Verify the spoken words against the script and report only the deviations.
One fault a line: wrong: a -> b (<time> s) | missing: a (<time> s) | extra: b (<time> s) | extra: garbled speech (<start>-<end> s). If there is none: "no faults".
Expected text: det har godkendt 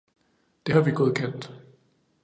extra: vi (0.8 s)